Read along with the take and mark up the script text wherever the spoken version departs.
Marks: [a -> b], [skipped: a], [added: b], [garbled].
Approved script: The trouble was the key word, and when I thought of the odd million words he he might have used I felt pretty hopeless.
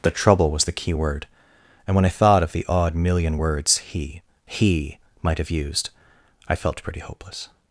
The trouble was the key word, and when I thought of the odd million words he he might have used I felt pretty hopeless.